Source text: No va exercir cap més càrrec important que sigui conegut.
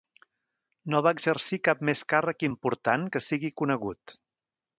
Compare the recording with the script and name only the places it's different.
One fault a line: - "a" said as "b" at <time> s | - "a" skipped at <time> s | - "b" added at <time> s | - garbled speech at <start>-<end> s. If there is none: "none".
none